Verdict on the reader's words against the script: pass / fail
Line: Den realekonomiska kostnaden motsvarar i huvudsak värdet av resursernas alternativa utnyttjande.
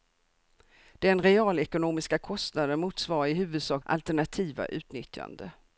fail